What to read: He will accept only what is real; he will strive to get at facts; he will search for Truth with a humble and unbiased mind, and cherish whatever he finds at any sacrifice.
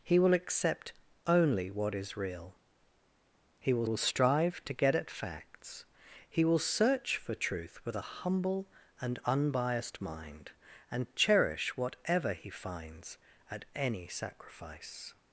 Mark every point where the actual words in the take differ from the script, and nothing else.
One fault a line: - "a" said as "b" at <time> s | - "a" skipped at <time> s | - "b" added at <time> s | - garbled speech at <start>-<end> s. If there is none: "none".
- "will" added at 3.8 s